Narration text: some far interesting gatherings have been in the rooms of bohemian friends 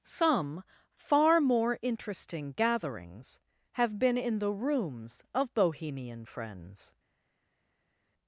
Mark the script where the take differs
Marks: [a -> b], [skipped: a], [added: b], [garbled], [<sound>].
some far [added: more] interesting gatherings have been in the rooms of bohemian friends